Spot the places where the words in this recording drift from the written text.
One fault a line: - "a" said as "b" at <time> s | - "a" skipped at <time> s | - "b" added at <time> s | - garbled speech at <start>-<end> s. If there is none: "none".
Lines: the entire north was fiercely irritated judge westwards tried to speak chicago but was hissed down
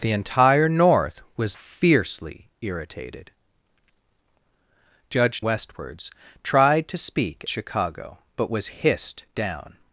none